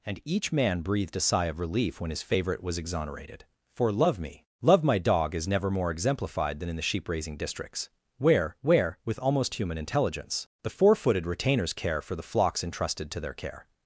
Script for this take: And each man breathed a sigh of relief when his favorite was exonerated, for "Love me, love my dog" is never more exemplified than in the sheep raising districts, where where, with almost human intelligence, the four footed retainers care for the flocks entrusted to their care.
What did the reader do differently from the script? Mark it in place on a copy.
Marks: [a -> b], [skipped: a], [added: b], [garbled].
And each man breathed a sigh of relief when his favorite was exonerated, for "Love me, love my dog" is never more exemplified than in the sheep raising districts, where where, with almost human intelligence, the four footed retainers care for the flocks entrusted to their care.